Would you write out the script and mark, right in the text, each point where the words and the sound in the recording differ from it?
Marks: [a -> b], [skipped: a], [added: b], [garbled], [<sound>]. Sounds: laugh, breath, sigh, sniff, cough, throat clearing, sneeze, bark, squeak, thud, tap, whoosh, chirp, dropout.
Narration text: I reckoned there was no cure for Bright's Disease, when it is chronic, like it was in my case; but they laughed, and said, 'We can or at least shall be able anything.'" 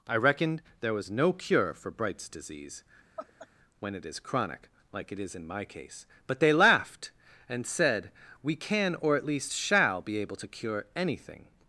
I reckoned there was no cure for Bright's Disease, [laugh] when it is chronic, like it [was -> is] in my case; but they laughed, and said, 'We can or at least shall be able [added: to cure] anything.'"